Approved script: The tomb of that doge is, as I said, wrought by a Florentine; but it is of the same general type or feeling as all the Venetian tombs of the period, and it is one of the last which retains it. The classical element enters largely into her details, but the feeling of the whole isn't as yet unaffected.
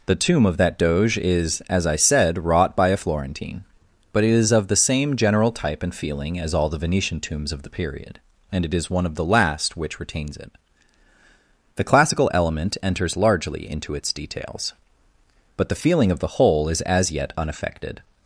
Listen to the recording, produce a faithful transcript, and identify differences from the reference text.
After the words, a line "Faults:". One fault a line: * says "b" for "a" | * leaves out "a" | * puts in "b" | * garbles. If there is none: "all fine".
The tomb of that doge is, as I said, wrought by a Florentine; but it is of the same general type and feeling as all the Venetian tombs of the period, and it is one of the last which retains it. The classical element enters largely into its details, but the feeling of the whole is as yet unaffected.
Faults:
* says "and" for "or"
* says "its" for "her"
* says "is" for "isn't"